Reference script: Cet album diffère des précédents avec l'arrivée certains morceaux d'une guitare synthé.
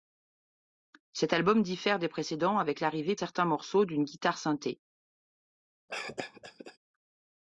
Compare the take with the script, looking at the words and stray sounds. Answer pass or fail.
fail